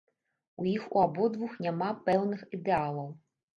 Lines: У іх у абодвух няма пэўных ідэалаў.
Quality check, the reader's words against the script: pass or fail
pass